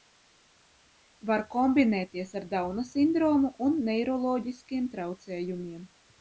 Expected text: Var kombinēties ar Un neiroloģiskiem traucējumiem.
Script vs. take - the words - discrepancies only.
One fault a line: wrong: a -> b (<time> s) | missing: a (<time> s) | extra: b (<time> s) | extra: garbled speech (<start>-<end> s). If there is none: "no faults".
extra: Dauna sindromu (2.5 s)